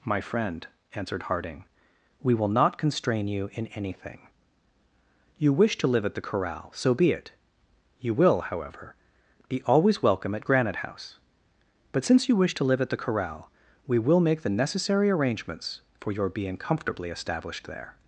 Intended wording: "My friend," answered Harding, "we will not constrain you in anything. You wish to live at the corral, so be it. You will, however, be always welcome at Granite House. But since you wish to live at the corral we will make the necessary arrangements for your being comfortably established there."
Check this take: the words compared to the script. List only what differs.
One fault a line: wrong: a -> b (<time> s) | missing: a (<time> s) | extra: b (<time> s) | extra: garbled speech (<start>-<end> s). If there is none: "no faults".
no faults